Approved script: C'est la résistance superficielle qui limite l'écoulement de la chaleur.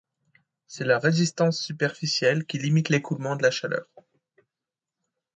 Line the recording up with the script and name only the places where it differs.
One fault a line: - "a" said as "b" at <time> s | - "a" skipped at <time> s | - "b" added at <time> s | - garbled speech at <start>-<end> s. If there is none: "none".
none